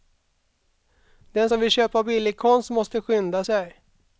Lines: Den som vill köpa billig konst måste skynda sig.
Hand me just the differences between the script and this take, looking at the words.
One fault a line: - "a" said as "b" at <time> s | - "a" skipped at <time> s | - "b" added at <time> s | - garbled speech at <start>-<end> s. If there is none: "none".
none